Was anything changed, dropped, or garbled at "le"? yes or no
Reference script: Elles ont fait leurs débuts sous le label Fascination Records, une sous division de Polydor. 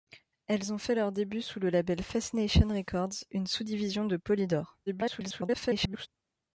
no